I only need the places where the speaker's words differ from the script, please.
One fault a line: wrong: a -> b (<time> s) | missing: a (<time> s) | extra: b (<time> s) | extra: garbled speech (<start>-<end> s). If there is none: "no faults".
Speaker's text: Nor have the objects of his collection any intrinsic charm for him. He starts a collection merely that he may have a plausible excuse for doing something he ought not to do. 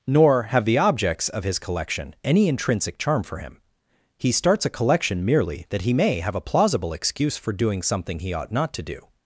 no faults